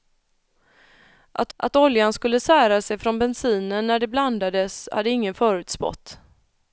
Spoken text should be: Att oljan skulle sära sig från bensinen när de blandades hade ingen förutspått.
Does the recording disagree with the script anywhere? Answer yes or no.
yes